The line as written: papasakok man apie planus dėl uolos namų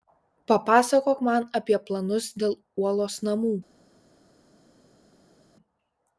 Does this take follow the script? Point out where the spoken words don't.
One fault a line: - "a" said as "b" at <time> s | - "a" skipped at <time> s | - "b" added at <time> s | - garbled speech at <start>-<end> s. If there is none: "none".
none